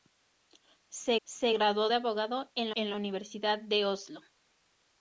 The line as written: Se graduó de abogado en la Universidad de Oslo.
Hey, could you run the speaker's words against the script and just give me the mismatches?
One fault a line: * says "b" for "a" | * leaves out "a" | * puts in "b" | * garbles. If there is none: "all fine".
* puts in "se"
* puts in "en"